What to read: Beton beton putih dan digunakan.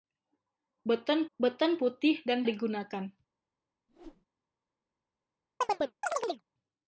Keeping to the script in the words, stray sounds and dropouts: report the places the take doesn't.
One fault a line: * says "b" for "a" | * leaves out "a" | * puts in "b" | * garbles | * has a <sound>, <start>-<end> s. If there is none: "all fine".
* has a whoosh, 3.9-4.3 s
* has a chirp, 5.6-6.4 s